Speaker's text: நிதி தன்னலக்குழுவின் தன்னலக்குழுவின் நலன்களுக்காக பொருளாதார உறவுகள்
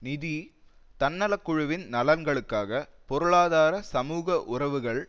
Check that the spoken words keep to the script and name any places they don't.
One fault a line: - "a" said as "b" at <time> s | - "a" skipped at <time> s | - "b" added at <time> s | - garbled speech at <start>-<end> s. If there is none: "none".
- "தன்னலக்குழுவின்" skipped at 1.8 s
- "சமூக" added at 3.9 s